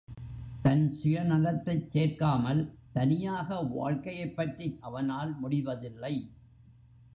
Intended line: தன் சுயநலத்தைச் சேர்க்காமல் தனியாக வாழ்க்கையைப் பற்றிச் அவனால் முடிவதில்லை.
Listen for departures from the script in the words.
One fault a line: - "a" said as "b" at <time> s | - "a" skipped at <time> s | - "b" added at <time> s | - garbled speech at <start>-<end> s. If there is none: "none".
none